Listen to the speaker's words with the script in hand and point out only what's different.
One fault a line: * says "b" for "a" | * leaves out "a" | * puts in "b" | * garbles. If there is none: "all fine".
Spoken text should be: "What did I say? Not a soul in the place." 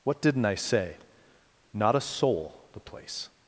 * says "didn't" for "did"
* leaves out "in"